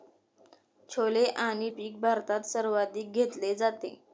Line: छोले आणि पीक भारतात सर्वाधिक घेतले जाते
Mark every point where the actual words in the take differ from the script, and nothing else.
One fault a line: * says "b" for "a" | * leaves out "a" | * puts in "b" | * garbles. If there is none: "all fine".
all fine